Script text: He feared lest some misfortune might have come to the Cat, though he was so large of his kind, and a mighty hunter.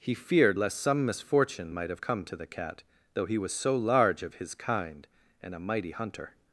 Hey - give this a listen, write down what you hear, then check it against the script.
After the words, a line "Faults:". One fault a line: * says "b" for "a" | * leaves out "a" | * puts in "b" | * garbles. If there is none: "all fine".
He feared lest some misfortune might have come to the Cat, though he was so large of his kind, and a mighty hunter.
Faults:
all fine